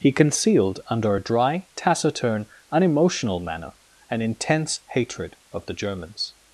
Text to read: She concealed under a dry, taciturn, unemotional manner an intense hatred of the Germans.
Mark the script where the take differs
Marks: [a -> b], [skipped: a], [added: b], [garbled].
[She -> He] concealed under a dry, taciturn, unemotional manner an intense hatred of the Germans.